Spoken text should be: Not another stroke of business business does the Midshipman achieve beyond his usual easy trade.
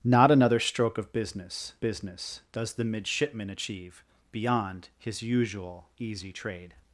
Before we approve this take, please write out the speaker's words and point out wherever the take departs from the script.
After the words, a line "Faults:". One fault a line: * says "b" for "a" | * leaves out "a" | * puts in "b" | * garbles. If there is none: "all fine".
Not another stroke of business business does the Midshipman achieve beyond his usual easy trade.
Faults:
all fine